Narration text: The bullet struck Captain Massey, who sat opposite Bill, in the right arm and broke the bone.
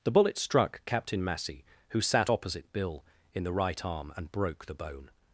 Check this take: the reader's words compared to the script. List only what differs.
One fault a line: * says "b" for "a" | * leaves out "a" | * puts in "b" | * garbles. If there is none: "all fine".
all fine